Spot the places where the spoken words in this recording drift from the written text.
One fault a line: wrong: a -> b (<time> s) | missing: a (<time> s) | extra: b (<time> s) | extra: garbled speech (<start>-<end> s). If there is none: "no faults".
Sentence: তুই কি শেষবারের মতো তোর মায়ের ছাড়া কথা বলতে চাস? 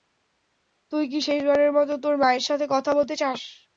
wrong: ছাড়া -> সাথে (2.4 s)